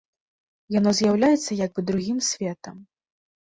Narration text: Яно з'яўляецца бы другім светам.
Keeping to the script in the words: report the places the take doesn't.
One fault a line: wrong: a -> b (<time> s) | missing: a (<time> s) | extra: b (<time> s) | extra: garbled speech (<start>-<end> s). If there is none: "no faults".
extra: як (1.6 s)